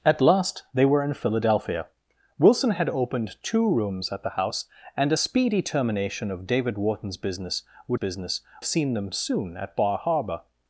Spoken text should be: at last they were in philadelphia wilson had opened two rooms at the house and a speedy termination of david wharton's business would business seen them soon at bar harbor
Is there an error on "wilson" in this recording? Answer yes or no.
no